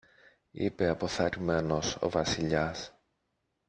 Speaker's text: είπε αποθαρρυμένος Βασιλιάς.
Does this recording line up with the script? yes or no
no